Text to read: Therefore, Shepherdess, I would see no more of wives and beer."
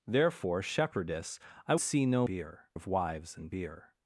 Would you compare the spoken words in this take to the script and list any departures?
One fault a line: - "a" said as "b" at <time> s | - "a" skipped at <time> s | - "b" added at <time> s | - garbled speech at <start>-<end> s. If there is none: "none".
- "would" skipped at 1.8 s
- "more" said as "beer" at 2.2 s